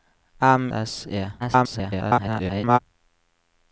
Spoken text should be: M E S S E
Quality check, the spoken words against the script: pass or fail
fail